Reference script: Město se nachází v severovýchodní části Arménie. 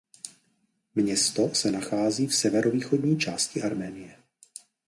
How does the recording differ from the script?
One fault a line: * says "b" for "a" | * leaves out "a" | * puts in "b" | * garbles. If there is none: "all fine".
all fine